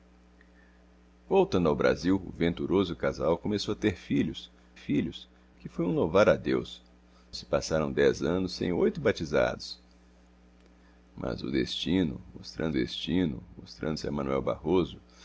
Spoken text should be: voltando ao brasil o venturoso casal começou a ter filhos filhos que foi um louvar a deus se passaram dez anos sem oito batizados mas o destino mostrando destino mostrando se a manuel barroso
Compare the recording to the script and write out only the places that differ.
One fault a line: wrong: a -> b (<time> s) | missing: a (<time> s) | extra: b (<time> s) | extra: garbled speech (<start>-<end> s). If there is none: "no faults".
no faults